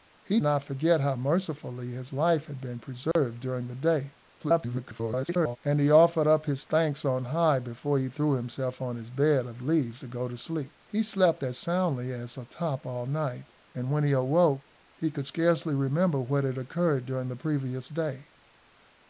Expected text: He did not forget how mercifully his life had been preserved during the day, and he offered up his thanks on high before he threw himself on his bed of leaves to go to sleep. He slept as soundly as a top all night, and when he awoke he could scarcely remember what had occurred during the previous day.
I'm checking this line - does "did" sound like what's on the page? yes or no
no